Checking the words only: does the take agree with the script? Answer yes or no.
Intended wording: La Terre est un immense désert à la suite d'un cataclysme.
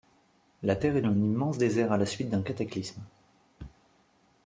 yes